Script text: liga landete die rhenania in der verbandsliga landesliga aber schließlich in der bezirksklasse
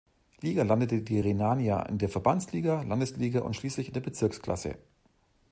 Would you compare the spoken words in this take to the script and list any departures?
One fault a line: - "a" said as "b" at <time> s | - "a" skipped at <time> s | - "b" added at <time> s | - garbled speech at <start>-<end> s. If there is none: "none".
- "aber" said as "und" at 3.4 s